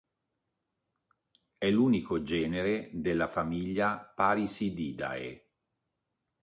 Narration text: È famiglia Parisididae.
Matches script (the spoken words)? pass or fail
fail